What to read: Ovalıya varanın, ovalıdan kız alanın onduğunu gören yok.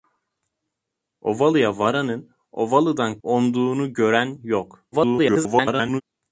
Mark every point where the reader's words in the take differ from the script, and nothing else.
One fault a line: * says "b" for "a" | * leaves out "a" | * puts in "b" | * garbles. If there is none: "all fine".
* leaves out "kız alanın"
* garbles